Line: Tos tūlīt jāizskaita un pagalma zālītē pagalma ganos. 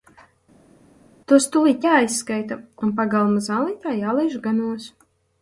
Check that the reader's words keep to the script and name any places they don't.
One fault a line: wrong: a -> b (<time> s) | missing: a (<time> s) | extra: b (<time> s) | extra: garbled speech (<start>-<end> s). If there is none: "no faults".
wrong: pagalma -> jālaiž (4.0 s)